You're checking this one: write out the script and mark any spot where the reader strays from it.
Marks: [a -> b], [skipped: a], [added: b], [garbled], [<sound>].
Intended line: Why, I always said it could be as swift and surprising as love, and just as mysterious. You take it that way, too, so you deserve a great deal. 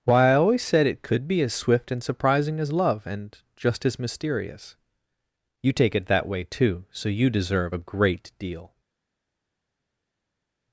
Why, I always said it could be as swift and surprising as love, and just as mysterious. You take it that way, too, so you deserve a great deal.